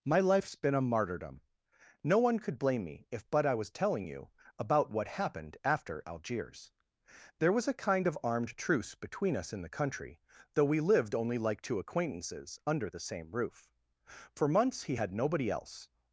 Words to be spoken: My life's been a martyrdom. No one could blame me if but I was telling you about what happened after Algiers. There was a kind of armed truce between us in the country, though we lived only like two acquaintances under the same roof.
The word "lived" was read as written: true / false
true